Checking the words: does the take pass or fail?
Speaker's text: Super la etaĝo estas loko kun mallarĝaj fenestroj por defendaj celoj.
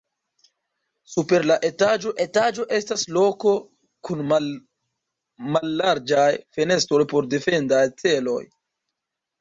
fail